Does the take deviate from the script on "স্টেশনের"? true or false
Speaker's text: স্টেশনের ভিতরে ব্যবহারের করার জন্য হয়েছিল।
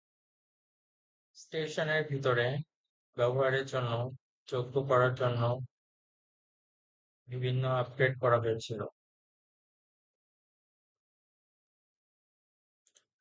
false